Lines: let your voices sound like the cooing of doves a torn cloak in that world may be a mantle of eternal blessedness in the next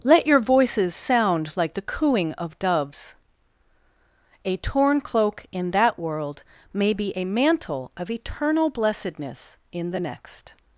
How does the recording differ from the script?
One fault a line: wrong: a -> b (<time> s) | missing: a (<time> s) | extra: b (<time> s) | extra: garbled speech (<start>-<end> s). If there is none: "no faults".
no faults